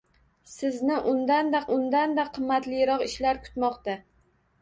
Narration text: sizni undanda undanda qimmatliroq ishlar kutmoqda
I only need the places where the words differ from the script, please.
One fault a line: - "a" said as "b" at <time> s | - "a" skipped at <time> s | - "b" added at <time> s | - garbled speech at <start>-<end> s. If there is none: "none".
none